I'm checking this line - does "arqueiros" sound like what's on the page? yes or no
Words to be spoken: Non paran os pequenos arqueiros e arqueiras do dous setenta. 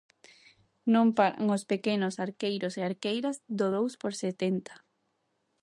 yes